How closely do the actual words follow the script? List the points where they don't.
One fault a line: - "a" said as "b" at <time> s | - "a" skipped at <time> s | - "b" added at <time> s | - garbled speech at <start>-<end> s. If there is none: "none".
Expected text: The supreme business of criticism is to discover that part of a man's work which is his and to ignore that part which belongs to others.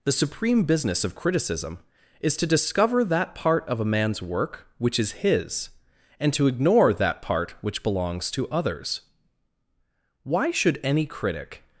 - "Why should any critic" added at 10.2 s